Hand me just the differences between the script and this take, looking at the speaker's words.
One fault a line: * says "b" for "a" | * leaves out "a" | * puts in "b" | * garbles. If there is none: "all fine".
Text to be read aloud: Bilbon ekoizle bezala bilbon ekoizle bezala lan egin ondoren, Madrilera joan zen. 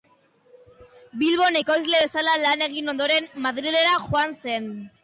* leaves out "bilbon ekoizle bezala"